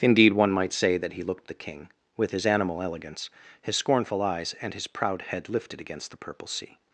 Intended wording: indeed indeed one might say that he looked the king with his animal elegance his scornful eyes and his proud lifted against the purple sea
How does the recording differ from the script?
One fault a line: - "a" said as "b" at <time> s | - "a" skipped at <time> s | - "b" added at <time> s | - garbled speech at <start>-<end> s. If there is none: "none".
- "indeed" skipped at 0.3 s
- "head" added at 5.2 s